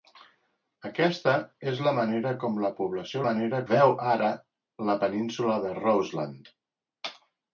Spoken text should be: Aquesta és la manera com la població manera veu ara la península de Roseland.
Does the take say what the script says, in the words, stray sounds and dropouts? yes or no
yes